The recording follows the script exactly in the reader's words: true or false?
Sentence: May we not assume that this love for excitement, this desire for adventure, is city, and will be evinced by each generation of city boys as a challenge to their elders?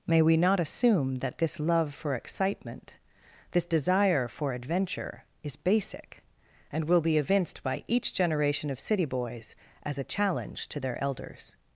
false